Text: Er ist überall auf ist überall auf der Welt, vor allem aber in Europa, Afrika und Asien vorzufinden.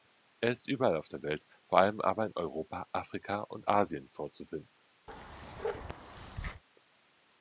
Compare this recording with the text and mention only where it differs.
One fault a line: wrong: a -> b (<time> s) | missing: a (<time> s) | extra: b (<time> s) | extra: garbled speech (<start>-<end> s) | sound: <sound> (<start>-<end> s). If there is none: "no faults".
missing: ist überall auf (1.1 s)
sound: bark (5.1-6.6 s)